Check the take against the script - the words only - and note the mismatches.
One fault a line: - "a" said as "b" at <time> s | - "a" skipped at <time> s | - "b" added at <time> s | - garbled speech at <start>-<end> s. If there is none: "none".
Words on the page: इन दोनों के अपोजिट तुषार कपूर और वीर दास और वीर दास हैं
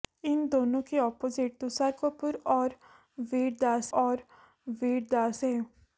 none